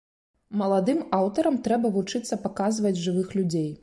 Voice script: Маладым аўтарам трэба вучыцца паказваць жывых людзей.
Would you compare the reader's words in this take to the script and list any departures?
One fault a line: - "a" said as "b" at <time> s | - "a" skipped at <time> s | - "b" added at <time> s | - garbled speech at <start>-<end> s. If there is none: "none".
none